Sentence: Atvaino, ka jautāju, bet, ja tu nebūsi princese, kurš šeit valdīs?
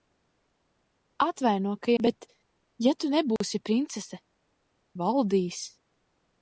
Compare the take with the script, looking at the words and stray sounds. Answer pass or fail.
fail